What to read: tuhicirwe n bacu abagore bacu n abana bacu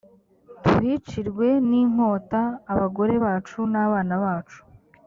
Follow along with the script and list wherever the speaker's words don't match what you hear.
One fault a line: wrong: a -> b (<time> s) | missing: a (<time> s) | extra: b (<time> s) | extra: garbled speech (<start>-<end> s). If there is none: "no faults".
wrong: bacu -> inkota (1.8 s)